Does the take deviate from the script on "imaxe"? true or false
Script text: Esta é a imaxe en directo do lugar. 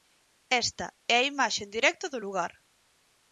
false